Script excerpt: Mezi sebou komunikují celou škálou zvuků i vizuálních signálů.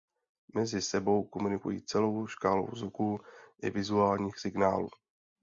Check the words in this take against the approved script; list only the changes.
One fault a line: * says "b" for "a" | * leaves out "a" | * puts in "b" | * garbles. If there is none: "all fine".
all fine